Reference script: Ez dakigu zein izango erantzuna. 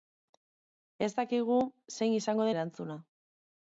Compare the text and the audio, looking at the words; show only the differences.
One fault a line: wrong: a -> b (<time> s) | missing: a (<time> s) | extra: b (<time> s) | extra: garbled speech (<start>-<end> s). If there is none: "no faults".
no faults